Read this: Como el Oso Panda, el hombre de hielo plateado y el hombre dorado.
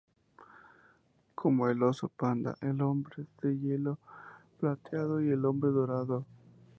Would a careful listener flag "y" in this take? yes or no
no